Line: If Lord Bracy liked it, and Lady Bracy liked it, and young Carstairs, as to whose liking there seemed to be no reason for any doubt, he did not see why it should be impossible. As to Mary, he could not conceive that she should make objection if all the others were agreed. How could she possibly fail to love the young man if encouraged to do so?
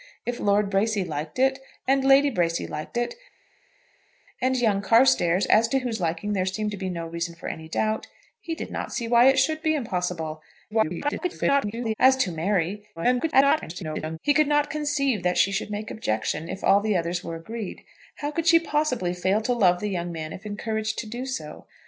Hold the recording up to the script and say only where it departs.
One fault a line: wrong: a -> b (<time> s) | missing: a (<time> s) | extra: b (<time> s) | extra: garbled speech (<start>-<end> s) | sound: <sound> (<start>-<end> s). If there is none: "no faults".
extra: garbled speech (10.7-11.9 s)
extra: garbled speech (13.0-14.2 s)